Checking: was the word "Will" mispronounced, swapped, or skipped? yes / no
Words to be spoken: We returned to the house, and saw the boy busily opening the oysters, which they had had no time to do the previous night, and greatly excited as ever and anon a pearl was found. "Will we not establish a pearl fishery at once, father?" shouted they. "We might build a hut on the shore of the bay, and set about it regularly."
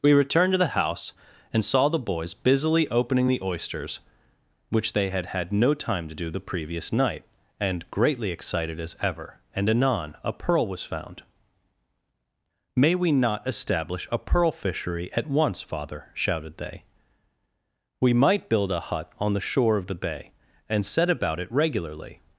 yes